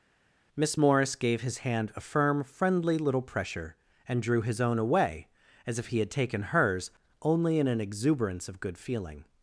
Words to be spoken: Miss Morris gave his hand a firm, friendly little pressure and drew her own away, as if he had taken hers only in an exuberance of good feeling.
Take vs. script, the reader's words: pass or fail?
fail